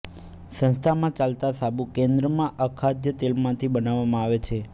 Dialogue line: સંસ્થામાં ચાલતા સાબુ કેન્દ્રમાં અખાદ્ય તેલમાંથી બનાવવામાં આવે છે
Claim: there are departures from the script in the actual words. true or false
false